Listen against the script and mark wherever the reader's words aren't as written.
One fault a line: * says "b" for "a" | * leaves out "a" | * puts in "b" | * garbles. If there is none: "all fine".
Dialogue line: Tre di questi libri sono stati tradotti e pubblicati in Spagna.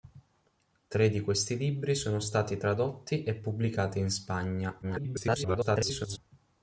* garbles